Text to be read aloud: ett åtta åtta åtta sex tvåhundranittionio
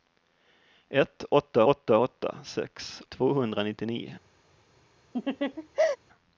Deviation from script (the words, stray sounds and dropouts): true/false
true